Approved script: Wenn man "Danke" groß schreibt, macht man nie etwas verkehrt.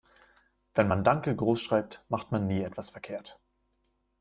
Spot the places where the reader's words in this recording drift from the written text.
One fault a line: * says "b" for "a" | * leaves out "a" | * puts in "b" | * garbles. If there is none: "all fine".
all fine